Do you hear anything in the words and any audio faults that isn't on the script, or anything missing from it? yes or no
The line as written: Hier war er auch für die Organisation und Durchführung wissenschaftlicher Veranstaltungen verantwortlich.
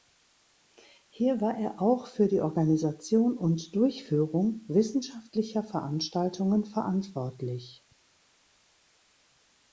no